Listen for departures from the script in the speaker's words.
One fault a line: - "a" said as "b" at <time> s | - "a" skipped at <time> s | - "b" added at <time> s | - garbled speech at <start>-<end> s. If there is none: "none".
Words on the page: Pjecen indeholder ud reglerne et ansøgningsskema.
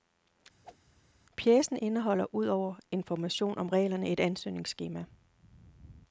- "over information om" added at 2.5 s